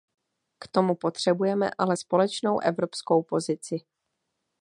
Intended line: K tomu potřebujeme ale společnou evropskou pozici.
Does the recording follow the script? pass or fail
pass